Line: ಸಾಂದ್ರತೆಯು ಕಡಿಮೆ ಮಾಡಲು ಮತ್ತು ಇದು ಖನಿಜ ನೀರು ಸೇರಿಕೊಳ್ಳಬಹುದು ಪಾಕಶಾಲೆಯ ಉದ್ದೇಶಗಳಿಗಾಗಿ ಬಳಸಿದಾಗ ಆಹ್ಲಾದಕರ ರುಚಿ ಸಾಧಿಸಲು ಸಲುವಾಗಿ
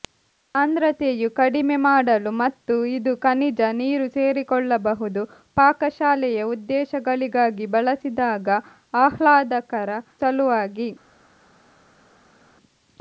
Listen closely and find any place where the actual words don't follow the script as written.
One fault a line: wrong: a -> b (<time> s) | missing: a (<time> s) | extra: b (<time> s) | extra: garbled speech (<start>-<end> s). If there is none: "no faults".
missing: ರುಚಿ ಸಾಧಿಸಲು (10.0 s)